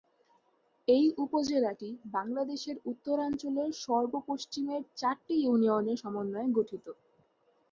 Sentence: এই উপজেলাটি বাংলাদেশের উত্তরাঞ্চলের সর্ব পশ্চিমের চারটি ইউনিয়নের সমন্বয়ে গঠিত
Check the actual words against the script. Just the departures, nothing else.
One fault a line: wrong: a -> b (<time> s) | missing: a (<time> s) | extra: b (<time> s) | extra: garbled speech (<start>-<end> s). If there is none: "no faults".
no faults